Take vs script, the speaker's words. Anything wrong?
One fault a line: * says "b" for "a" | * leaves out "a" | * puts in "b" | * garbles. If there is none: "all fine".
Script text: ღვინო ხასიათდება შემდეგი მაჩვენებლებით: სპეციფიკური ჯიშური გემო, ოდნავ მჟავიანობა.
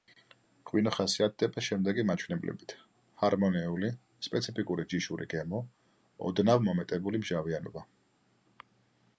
* puts in "ჰარმონიული"
* puts in "მომეტებული"